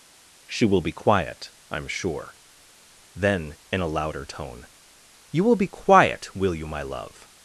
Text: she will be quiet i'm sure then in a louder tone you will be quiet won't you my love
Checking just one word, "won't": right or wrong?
wrong